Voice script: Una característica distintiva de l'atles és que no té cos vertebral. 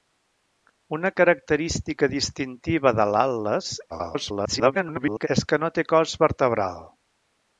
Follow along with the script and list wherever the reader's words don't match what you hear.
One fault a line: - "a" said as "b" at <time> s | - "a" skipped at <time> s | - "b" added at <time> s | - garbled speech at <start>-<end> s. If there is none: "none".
- garbled speech at 3.9-5.3 s